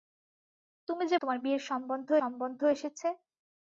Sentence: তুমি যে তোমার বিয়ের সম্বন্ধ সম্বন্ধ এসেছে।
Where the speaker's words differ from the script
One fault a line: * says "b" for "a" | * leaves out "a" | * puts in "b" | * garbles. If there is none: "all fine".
all fine